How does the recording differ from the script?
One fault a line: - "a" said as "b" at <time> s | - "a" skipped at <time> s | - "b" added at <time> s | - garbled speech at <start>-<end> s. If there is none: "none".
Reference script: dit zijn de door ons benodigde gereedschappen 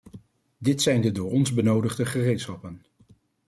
none